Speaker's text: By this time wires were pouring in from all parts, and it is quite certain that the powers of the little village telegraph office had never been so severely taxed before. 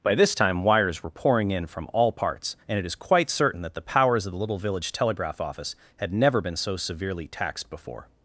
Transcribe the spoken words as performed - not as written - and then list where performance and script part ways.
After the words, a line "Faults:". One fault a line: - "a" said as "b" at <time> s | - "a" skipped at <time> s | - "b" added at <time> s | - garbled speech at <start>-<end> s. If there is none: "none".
By this time wires were pouring in from all parts, and it is quite certain that the powers of the little village telegraph office had never been so severely taxed before.
Faults:
none